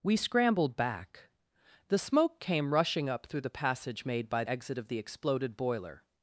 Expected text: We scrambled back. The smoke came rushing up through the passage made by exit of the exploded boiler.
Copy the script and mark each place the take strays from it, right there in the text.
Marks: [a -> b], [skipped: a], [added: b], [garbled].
We scrambled back. The smoke came rushing up through the passage made by exit of the exploded boiler.